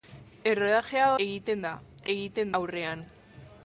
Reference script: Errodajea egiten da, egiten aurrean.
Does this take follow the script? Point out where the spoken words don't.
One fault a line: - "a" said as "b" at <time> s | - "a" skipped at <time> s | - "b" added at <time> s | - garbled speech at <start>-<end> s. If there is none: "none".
none